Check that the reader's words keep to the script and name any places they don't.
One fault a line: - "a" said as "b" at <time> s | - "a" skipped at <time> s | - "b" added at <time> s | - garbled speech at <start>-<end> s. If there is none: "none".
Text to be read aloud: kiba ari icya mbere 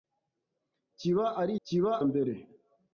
- "icya" said as "kiba" at 1.7 s